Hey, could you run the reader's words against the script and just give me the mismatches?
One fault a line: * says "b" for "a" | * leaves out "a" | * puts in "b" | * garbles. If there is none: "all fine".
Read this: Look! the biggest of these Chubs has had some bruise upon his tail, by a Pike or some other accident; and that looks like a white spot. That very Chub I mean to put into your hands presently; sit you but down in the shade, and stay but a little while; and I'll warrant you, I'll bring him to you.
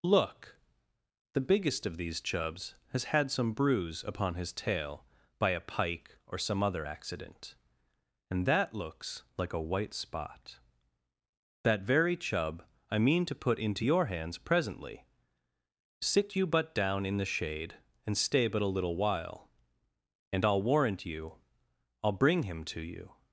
all fine